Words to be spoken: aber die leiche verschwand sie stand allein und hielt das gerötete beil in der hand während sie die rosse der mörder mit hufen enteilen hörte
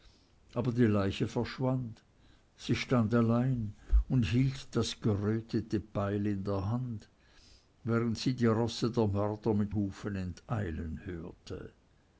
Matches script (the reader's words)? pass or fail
pass